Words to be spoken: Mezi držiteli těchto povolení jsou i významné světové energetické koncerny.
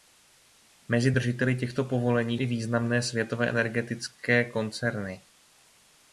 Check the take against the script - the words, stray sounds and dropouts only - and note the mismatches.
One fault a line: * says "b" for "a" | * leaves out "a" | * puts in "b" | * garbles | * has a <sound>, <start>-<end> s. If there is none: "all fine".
* leaves out "jsou"